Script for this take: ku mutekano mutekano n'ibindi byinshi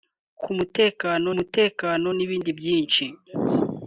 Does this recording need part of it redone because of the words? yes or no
no